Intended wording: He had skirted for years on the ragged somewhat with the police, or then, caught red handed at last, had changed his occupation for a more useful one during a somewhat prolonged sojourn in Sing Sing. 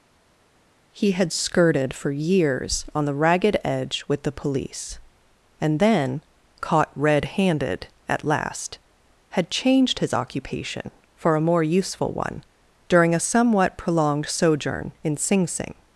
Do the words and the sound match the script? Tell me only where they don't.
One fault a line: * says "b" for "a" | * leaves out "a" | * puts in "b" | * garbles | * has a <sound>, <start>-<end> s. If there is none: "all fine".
* says "edge" for "somewhat"
* says "and" for "or"